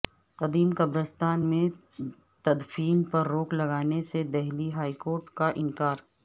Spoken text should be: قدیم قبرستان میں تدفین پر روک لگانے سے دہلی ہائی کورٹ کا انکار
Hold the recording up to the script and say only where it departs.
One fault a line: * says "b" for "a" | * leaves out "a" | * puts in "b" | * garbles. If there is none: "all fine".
all fine